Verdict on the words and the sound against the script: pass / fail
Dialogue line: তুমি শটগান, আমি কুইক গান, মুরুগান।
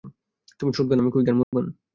fail